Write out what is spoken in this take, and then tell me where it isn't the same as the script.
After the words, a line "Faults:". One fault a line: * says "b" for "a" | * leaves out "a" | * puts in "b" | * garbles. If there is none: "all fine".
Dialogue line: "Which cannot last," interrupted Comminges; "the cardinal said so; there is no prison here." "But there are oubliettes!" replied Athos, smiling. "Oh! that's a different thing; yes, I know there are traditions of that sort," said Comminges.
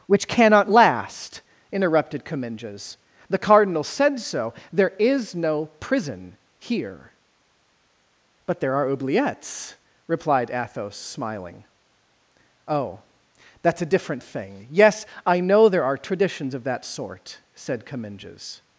"Which cannot last," interrupted Comminges; "the cardinal said so; there is no prison here." "But there are oubliettes!" replied Athos, smiling. "Oh! that's a different thing; yes, I know there are traditions of that sort," said Comminges.
Faults:
all fine